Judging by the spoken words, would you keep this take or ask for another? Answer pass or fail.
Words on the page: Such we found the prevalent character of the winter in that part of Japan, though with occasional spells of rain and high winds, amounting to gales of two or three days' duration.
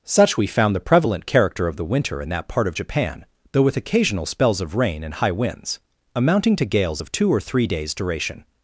pass